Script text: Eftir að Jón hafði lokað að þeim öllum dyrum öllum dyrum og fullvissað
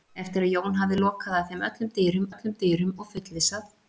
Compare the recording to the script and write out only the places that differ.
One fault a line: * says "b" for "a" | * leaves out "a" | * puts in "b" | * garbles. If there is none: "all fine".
all fine